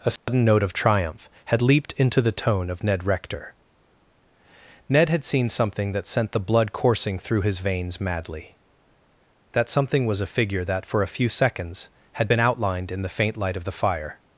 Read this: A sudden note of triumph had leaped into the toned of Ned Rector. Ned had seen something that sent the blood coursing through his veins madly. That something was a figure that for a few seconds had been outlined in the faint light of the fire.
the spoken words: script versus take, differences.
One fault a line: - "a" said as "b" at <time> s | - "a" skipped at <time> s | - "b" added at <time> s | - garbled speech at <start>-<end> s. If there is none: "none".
- "toned" said as "tone" at 2.3 s